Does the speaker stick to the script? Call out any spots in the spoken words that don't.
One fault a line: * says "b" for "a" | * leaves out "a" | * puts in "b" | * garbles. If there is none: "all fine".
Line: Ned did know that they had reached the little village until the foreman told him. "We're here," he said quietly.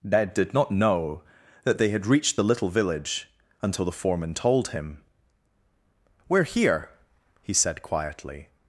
* puts in "not"